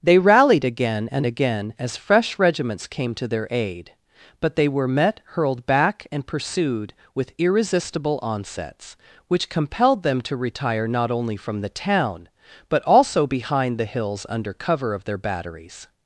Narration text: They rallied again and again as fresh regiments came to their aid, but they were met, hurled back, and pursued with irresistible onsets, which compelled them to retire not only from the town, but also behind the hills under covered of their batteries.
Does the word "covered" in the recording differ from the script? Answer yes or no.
yes